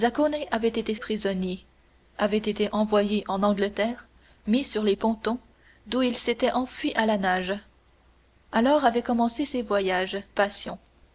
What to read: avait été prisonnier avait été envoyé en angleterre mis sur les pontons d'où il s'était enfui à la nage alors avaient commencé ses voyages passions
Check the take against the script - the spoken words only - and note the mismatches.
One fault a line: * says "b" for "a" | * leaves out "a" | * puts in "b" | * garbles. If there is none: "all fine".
all fine